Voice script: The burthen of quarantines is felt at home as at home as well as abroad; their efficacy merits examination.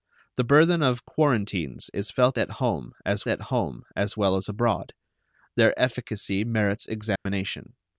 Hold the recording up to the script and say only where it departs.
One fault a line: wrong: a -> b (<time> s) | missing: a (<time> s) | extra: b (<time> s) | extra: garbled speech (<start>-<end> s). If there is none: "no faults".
no faults